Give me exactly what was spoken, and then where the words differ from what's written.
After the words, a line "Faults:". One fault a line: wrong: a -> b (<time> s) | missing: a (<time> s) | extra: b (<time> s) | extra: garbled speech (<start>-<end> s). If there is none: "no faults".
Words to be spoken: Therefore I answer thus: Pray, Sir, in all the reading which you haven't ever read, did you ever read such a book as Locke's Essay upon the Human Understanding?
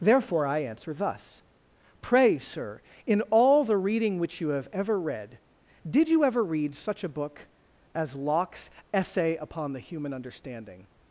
Therefore I answer thus: Pray, Sir, in all the reading which you have ever read, did you ever read such a book as Locke's Essay upon the Human Understanding?
Faults:
wrong: haven't -> have (4.5 s)